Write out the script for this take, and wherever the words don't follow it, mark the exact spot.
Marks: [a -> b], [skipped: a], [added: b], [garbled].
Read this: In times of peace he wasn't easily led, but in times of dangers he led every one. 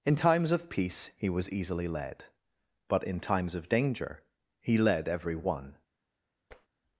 In times of peace he [wasn't -> was] easily led, but in times of [dangers -> danger] he led every one.